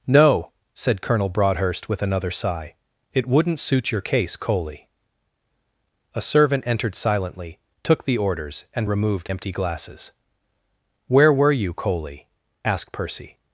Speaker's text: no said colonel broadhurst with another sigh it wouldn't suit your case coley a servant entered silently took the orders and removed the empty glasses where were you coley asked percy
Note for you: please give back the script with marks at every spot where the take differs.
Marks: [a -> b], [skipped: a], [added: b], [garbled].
no said colonel broadhurst with another sigh it wouldn't suit your case coley a servant entered silently took the orders and removed [skipped: the] empty glasses where were you coley asked percy